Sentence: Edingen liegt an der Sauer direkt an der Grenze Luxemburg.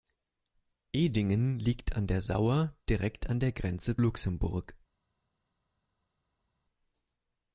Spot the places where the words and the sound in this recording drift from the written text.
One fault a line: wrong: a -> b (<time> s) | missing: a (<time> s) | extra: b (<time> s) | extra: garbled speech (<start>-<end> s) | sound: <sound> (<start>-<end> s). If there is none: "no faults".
no faults